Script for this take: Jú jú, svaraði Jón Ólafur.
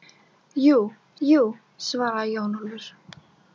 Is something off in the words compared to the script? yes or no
no